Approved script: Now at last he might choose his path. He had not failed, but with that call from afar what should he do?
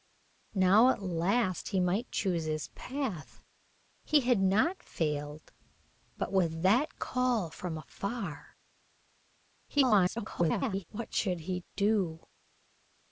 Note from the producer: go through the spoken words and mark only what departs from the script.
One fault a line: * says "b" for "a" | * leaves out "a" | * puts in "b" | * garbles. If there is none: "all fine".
* garbles